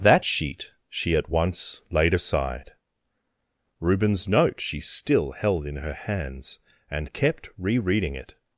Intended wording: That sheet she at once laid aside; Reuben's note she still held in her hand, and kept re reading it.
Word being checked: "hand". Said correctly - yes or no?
no